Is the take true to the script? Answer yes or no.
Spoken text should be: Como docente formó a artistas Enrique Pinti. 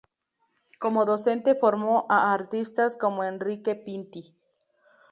no